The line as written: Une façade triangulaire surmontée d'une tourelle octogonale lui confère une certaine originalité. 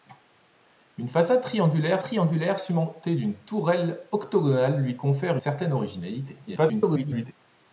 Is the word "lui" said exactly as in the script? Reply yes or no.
yes